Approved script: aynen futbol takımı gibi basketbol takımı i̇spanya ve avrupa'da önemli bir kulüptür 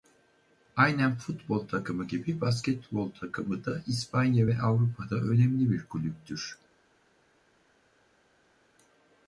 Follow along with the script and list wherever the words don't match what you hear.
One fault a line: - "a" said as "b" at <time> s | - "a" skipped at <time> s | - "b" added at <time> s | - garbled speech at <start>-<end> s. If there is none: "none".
- "da" added at 3.6 s